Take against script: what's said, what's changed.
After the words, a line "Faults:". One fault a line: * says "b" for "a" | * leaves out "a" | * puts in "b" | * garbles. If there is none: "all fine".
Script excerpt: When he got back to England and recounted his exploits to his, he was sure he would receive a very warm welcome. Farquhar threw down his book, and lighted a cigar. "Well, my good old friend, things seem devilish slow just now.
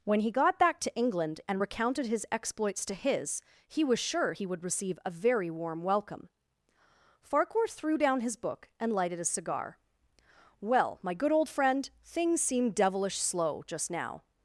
When he got back to England and recounted his exploits to his, he was sure he would receive a very warm welcome. Farquhar threw down his book, and lighted a cigar. "Well, my good old friend, things seem devilish slow just now.
Faults:
all fine